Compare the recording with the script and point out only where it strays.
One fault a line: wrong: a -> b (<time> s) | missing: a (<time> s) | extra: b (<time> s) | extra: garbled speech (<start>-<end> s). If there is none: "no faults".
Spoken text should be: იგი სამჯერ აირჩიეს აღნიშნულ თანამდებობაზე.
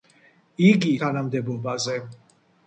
missing: სამჯერ აირჩიეს აღნიშნულ (0.9 s)